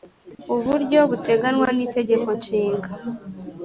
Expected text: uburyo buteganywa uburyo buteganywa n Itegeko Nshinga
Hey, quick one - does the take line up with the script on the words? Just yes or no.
no